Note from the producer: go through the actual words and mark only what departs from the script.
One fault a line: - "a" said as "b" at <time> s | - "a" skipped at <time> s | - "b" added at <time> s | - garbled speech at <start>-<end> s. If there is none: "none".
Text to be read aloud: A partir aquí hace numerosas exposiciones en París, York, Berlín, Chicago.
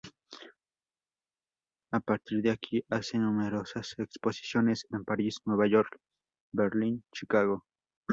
- "de" added at 2.4 s
- "Nueva" added at 5.4 s